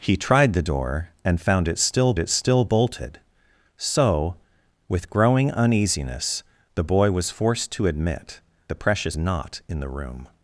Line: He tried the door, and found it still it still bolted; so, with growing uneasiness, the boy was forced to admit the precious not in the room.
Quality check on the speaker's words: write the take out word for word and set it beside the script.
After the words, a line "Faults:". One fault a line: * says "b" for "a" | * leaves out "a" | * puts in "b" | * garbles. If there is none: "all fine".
He tried the door, and found it still it still bolted; so, with growing uneasiness, the boy was forced to admit the precious not in the room.
Faults:
all fine